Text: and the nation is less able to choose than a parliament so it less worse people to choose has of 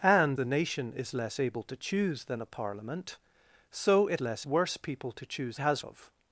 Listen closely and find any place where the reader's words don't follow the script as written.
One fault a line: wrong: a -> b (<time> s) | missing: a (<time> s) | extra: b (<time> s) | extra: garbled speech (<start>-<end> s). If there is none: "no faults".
no faults